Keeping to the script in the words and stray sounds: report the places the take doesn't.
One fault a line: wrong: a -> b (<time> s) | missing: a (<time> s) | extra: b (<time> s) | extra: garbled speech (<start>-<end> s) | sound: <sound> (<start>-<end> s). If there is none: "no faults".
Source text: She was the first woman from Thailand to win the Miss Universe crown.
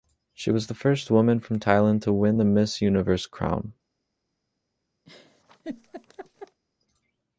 sound: laugh (5.1-6.6 s)